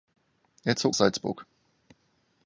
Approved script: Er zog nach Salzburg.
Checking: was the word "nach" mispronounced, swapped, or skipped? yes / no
yes